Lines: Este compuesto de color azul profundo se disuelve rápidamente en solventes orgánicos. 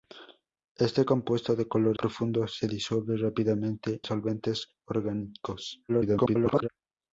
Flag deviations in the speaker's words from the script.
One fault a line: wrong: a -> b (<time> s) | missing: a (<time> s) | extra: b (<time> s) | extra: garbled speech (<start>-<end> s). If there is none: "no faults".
missing: azul (2.0 s)
missing: en (4.0 s)
extra: garbled speech (5.9-6.7 s)